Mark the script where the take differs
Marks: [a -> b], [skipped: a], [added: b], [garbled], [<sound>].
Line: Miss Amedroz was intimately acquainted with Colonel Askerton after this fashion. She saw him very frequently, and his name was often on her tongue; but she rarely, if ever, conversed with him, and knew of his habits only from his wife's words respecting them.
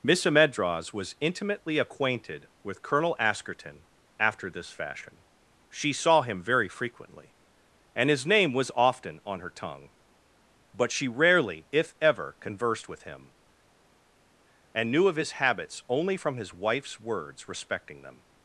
Miss Amedroz was intimately acquainted with Colonel Askerton after this fashion. She saw him very frequently, and his name was often on her tongue; but she rarely, if ever, conversed with him, and knew of his habits only from his wife's words respecting them.